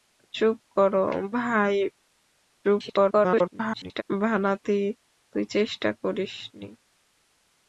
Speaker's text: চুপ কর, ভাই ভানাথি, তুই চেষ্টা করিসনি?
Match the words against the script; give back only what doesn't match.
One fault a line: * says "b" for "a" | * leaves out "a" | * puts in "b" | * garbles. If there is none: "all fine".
* garbles